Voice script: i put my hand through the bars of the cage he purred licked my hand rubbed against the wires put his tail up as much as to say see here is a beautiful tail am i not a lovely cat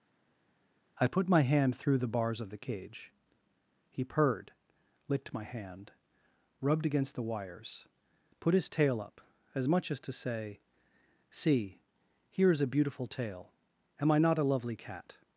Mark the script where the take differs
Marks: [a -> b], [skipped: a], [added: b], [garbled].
i put my hand through the bars of the cage he purred licked my hand rubbed against the wires put his tail up as much as to say see here is a beautiful tail am i not a lovely cat